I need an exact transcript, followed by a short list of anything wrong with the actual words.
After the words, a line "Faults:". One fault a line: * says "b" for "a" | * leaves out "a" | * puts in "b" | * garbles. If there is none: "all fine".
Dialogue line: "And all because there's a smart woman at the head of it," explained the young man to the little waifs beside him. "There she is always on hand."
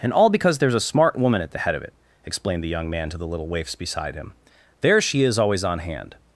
"And all because there's a smart woman at the head of it," explained the young man to the little waifs beside him. "There she is always on hand."
Faults:
all fine